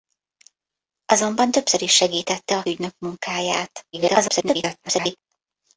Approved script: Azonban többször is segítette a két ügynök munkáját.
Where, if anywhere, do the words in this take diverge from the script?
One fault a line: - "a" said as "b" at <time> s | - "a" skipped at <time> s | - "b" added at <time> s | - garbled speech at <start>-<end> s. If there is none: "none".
- "két" skipped at 2.6 s
- garbled speech at 3.9-5.2 s